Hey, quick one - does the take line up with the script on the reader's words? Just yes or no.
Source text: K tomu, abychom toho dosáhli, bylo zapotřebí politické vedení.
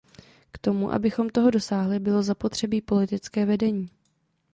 yes